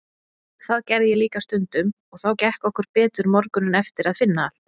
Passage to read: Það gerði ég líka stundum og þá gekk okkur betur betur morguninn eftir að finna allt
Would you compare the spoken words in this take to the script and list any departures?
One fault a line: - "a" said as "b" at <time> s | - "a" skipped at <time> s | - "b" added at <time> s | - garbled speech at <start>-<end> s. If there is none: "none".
- "betur" skipped at 3.3 s